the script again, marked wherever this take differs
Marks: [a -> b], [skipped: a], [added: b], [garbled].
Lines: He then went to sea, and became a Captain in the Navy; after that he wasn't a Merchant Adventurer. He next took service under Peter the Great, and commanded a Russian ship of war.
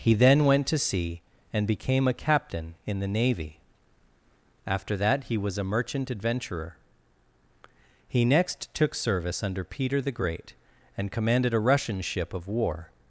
He then went to sea, and became a Captain in the Navy; after that he [wasn't -> was] a Merchant Adventurer. He next took service under Peter the Great, and commanded a Russian ship of war.